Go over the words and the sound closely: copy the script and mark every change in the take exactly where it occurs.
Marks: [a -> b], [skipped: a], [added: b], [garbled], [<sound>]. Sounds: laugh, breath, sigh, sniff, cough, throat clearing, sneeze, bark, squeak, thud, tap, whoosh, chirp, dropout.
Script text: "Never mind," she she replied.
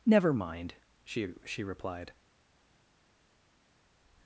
"Never mind," she she replied.